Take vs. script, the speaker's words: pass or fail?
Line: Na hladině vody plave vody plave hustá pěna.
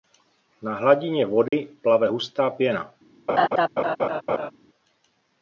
fail